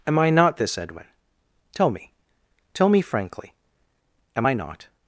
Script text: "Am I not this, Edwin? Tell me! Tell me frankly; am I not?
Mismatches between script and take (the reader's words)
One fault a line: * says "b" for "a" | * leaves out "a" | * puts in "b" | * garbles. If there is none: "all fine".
all fine